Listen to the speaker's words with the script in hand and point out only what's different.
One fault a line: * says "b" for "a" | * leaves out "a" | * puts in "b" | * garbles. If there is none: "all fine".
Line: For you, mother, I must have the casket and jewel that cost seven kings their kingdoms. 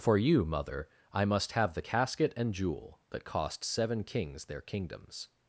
all fine